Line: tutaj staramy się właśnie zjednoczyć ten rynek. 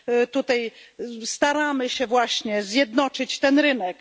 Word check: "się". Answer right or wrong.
right